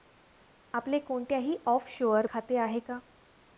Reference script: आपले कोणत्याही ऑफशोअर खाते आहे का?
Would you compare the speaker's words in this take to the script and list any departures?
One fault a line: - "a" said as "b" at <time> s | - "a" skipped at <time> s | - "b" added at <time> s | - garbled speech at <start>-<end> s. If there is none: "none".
none